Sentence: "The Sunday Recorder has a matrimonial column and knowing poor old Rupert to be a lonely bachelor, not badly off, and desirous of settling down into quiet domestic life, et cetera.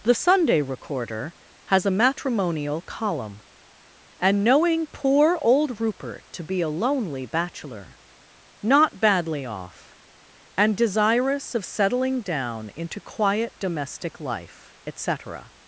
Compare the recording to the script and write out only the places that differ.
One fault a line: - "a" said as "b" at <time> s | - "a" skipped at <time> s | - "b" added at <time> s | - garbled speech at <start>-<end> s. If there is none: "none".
none